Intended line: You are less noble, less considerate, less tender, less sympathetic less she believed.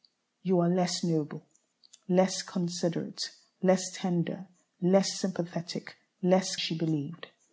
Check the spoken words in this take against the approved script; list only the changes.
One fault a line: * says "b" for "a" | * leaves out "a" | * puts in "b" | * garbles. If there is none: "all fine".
all fine